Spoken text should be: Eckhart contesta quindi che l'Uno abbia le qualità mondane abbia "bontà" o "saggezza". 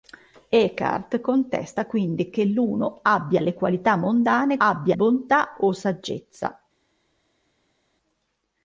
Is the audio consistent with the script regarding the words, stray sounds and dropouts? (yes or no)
yes